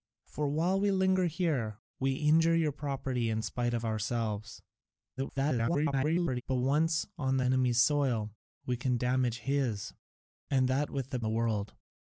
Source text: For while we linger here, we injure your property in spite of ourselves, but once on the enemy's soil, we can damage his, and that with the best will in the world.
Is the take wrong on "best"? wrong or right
wrong